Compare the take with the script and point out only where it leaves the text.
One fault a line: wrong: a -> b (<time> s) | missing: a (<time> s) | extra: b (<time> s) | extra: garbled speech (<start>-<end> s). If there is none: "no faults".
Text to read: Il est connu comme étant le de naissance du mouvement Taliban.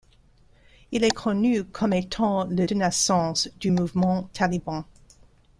no faults